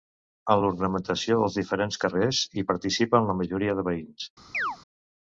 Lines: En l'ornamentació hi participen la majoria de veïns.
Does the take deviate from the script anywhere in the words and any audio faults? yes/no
yes